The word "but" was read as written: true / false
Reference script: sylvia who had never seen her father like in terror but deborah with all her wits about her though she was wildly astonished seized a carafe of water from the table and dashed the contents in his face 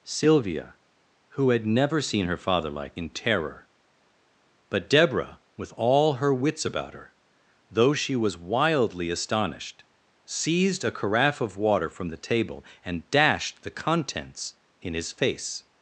true